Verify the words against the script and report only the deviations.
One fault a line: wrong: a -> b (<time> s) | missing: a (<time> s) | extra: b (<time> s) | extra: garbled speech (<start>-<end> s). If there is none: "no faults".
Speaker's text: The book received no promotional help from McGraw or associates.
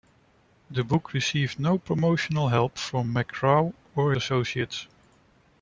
no faults